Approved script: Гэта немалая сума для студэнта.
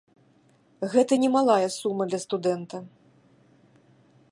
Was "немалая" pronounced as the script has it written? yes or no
yes